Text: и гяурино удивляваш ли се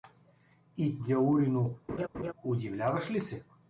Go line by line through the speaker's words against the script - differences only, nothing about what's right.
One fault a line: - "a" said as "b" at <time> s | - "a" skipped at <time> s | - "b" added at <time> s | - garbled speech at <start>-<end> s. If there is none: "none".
none